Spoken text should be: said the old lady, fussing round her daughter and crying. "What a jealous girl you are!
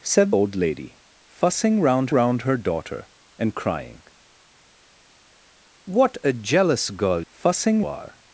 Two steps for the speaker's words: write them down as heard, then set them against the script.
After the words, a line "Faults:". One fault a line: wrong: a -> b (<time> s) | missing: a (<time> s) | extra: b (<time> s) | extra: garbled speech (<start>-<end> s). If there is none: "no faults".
said old lady, fussing round round her daughter and crying. "What a jealous girl fussing are!
Faults:
missing: the (0.3 s)
extra: round (2.1 s)
wrong: you -> fussing (7.3 s)